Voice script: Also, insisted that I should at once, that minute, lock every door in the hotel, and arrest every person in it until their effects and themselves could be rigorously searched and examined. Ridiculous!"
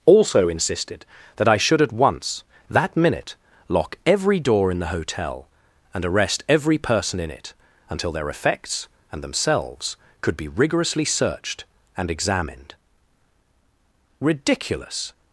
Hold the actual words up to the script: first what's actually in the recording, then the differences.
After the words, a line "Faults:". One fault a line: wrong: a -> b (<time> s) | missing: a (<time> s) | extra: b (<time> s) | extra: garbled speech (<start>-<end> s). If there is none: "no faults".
Also, insisted that I should at once, that minute, lock every door in the hotel, and arrest every person in it until their effects and themselves could be rigorously searched and examined. Ridiculous!"
Faults:
no faults